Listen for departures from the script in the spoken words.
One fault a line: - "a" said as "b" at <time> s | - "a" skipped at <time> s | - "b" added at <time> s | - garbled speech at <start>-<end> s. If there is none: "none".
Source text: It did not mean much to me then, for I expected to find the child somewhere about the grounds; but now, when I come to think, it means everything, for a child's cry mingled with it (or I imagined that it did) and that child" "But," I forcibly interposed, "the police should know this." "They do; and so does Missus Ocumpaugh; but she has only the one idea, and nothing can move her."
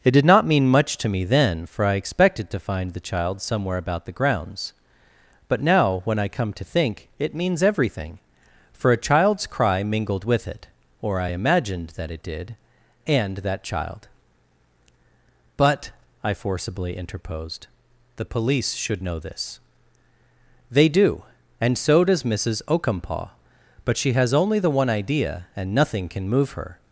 none